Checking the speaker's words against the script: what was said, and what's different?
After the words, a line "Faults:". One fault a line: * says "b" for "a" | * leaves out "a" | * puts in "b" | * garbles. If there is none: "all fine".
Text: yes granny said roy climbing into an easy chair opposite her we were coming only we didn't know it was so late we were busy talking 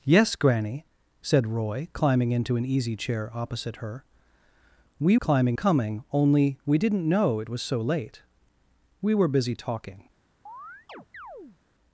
yes granny said roy climbing into an easy chair opposite her we climbing coming only we didn't know it was so late we were busy talking
Faults:
* says "climbing" for "were"